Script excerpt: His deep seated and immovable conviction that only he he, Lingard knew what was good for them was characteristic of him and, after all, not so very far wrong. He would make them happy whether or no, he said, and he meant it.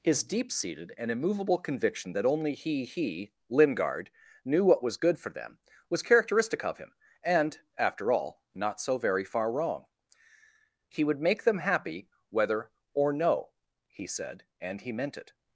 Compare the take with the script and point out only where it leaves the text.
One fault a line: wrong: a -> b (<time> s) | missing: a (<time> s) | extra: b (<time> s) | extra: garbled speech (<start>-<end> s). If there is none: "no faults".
no faults